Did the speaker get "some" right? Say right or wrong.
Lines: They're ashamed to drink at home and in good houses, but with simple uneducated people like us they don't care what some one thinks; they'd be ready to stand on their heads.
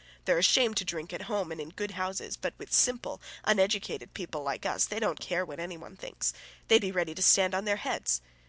wrong